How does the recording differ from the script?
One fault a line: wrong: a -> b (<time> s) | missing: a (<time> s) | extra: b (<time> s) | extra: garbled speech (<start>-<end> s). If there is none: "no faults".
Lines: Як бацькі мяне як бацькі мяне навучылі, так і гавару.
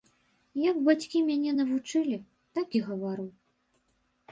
missing: як бацькі мяне (1.5 s)